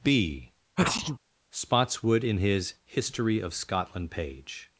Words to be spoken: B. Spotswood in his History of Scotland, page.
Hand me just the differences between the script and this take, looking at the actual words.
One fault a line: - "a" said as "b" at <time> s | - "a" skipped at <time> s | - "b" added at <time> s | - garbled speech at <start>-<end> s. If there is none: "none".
none